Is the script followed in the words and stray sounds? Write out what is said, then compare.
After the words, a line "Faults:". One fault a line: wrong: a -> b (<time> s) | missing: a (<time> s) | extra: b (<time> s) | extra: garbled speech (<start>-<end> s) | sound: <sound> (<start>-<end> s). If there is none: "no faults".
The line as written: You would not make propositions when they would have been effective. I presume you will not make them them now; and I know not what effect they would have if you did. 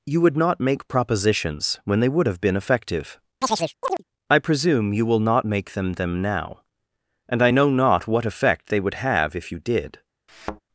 You would not make propositions when they would have been effective. I presume you will not make them them now; and I know not what effect they would have if you did.
Faults:
sound: chirp (3.4-4.0 s)
sound: thud (10.3-10.6 s)